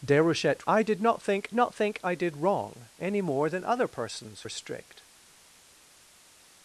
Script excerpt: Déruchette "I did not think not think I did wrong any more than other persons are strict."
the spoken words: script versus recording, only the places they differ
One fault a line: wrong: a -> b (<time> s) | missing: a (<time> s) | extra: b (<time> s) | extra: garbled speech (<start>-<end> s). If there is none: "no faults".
no faults